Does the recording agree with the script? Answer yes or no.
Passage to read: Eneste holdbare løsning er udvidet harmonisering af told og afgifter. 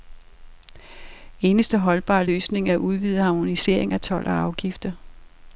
yes